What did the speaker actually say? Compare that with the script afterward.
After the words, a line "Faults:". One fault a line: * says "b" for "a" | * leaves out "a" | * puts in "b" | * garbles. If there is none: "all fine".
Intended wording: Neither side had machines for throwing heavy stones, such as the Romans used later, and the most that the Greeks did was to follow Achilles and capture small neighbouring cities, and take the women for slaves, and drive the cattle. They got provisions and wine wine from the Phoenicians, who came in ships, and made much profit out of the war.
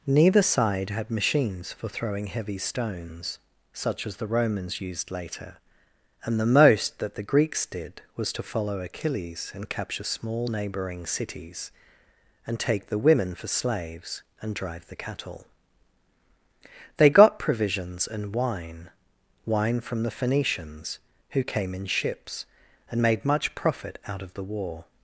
Neither side had machines for throwing heavy stones, such as the Romans used later, and the most that the Greeks did was to follow Achilles and capture small neighbouring cities, and take the women for slaves, and drive the cattle. They got provisions and wine wine from the Phoenicians, who came in ships, and made much profit out of the war.
Faults:
all fine